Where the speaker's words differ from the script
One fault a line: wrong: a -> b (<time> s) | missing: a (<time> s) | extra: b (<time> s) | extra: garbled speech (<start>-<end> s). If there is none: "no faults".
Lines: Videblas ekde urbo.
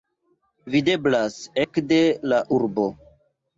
extra: la (2.3 s)